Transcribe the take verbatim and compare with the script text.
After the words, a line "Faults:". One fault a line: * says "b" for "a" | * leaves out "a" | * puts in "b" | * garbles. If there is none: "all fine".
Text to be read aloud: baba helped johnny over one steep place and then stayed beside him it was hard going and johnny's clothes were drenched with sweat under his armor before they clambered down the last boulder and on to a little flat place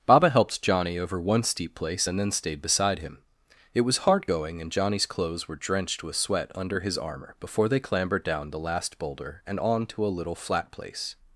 baba helped johnny over one steep place and then stayed beside him it was hard going and johnny's clothes were drenched with sweat under his armor before they clambered down the last boulder and on to a little flat place
Faults:
all fine